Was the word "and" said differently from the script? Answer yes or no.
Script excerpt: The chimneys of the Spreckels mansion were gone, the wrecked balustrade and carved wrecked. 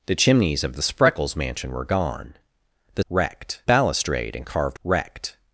no